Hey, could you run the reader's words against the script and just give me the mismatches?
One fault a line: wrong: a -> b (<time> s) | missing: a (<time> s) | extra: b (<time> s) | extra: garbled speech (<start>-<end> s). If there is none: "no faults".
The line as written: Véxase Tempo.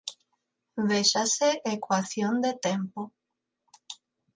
extra: Ecuación de (1.8 s)